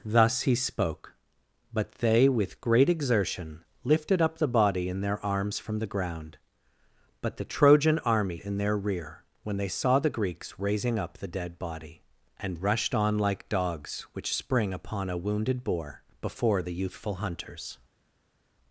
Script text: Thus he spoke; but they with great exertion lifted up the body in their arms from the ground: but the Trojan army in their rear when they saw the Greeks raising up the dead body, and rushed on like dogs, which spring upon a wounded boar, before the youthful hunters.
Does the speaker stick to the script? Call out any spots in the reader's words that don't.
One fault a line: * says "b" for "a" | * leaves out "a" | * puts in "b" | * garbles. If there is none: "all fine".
all fine